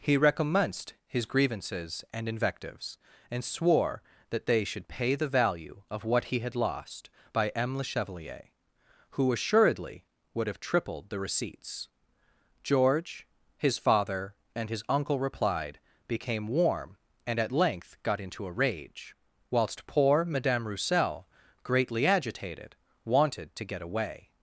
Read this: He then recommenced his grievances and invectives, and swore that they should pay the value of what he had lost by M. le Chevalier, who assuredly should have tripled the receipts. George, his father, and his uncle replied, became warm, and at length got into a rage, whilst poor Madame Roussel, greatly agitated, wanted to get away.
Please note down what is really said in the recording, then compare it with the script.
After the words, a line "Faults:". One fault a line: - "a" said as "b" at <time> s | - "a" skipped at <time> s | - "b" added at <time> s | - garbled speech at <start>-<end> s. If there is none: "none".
He recommenced his grievances and invectives, and swore that they should pay the value of what he had lost by M. le Chevalier, who assuredly would have tripled the receipts. George, his father, and his uncle replied, became warm, and at length got into a rage, whilst poor Madame Roussel, greatly agitated, wanted to get away.
Faults:
- "then" skipped at 0.2 s
- "should" said as "would" at 10.3 s